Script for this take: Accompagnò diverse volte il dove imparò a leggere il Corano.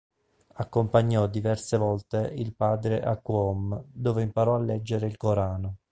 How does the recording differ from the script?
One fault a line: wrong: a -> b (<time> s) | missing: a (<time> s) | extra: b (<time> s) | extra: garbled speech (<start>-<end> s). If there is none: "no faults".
extra: padre a Qom (2.5 s)